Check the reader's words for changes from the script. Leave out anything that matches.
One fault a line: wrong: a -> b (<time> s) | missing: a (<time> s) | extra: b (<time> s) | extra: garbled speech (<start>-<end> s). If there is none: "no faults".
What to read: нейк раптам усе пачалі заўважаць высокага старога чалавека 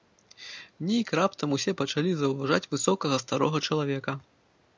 no faults